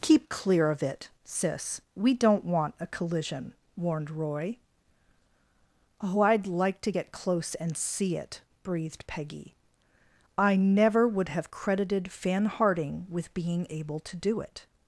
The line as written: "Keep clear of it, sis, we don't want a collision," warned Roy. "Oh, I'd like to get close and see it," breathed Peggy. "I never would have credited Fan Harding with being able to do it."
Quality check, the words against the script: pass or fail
pass